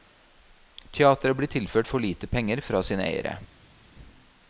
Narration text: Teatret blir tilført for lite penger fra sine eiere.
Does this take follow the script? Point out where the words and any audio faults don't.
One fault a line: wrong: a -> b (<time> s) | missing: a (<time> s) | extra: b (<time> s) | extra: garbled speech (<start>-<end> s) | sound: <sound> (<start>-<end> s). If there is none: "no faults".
no faults